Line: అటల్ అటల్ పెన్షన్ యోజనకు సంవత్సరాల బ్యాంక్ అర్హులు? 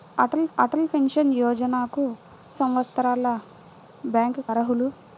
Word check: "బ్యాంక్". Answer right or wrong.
right